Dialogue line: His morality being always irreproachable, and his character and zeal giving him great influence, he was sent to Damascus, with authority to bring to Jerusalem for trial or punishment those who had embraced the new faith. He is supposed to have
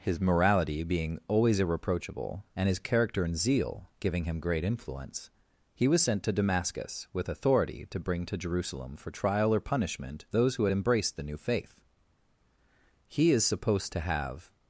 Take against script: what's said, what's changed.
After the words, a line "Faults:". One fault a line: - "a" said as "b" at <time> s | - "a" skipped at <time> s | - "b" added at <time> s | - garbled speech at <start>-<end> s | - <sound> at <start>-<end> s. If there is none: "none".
His morality being always irreproachable, and his character and zeal giving him great influence, he was sent to Damascus, with authority to bring to Jerusalem for trial or punishment those who had embraced the new faith. He is supposed to have
Faults:
none